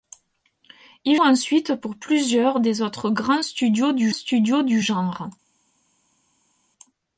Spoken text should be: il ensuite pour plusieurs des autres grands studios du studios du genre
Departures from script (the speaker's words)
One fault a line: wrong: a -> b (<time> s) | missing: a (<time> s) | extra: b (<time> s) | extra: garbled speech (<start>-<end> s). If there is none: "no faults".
no faults